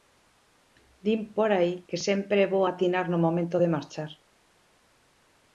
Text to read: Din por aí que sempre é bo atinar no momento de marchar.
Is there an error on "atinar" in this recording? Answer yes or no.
no